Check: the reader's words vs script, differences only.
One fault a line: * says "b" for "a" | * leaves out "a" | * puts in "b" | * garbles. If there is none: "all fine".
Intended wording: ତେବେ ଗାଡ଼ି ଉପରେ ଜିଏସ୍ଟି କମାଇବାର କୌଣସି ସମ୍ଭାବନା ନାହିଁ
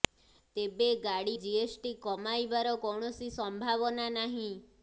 * leaves out "ଉପରେ"